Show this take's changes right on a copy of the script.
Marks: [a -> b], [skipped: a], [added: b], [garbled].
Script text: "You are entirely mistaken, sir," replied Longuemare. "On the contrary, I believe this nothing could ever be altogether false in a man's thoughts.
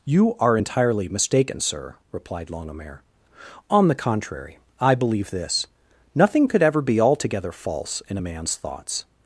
"You are entirely mistaken, sir," replied Longuemare. "On the contrary, I believe this nothing could ever be altogether false in a man's thoughts.